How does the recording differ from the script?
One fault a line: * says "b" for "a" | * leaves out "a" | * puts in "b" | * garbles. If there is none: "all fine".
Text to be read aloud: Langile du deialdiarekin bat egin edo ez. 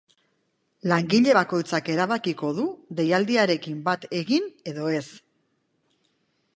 * puts in "bakoitzak erabakiko"